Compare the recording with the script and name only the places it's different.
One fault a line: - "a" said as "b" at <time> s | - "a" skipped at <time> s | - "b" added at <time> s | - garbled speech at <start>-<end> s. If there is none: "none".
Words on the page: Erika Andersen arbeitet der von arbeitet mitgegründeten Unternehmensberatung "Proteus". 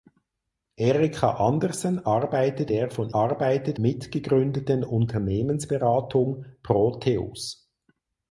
none